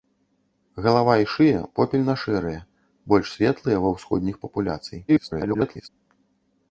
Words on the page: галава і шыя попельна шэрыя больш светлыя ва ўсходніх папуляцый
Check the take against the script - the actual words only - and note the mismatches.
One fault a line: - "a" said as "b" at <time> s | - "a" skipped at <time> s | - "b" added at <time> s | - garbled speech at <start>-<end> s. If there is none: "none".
- garbled speech at 5.1-5.9 s